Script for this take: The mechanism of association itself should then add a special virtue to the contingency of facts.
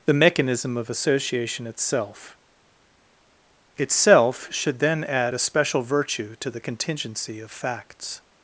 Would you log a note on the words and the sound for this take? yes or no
yes